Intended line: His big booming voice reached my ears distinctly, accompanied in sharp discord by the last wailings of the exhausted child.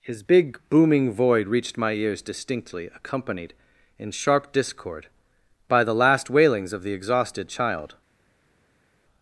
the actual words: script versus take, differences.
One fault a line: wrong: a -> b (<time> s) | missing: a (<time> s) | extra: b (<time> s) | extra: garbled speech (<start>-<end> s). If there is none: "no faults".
wrong: voice -> void (1.1 s)